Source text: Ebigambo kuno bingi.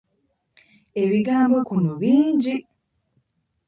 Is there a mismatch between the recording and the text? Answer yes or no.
no